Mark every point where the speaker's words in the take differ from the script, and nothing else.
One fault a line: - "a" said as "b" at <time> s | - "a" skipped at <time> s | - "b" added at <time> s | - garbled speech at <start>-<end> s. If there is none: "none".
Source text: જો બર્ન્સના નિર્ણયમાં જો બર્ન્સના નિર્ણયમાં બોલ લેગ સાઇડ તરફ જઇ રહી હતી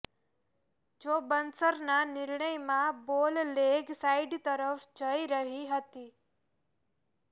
- "જો બર્ન્સના નિર્ણયમાં" skipped at 3.0 s